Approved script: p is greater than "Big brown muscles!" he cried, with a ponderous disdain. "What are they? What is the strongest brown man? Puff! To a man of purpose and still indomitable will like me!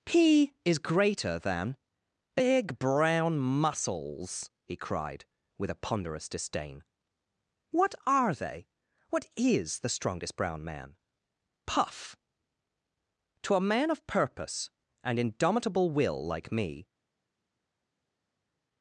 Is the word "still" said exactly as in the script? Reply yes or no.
no